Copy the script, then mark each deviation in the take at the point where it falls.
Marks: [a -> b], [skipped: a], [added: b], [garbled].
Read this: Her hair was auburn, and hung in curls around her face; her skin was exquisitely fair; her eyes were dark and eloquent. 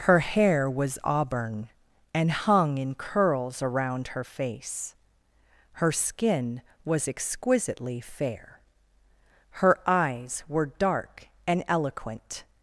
Her hair was auburn, and hung in curls around her face; her skin was exquisitely fair; her eyes were dark and eloquent.